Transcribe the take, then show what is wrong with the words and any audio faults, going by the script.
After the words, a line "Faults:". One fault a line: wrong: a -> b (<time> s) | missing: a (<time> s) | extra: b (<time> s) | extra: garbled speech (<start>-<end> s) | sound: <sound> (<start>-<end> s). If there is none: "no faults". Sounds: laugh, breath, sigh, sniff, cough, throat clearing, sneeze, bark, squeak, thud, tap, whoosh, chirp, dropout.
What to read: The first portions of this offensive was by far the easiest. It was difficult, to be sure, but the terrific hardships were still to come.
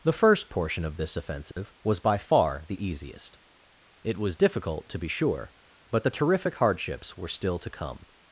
The first portion of this offensive was by far the easiest. It was difficult, to be sure, but the terrific hardships were still to come.
Faults:
wrong: portions -> portion (0.5 s)
sound: dropout (1.5-1.6 s)